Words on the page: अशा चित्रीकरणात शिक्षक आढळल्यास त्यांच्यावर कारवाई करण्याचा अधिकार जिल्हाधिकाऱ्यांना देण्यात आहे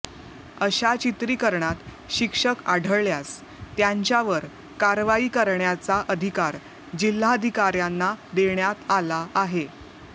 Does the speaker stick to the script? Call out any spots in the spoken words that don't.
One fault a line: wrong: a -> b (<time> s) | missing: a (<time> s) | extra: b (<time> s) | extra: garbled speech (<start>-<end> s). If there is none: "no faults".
extra: आला (8.9 s)